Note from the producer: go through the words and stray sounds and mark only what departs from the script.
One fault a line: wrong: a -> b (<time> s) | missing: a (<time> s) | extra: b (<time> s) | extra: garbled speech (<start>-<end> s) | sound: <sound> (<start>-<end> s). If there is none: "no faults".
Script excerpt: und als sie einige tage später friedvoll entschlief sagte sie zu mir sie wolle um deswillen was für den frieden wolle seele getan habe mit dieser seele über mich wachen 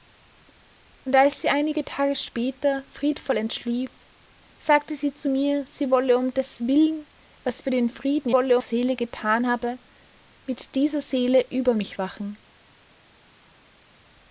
no faults